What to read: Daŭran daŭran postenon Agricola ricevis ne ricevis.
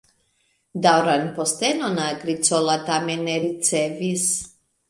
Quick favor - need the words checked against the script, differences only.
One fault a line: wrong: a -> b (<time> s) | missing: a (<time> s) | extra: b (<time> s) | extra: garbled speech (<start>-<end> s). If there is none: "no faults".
missing: daŭran (1.2 s)
wrong: ricevis -> tamen (2.9 s)